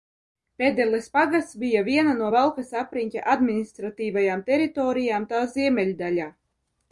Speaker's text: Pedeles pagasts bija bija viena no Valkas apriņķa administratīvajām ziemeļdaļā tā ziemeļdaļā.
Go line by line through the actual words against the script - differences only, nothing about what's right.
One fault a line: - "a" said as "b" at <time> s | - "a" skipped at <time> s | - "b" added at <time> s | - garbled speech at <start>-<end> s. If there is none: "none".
- "bija" skipped at 1.8 s
- "ziemeļdaļā" said as "teritorijām" at 4.5 s